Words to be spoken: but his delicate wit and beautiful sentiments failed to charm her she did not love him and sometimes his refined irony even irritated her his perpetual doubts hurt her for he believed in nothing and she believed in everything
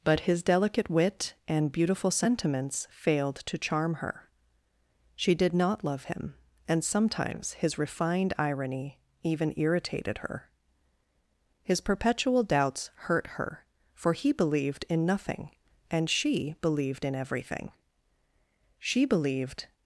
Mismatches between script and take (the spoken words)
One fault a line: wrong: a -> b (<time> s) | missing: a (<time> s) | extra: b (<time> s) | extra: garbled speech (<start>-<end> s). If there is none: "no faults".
extra: she believed (18.8 s)